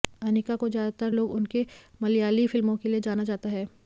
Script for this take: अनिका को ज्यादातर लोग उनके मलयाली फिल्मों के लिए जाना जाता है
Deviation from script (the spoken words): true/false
false